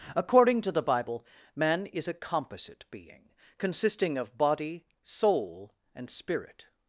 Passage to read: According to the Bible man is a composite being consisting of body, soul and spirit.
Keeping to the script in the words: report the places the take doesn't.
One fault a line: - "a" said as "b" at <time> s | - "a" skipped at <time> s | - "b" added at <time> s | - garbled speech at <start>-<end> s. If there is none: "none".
none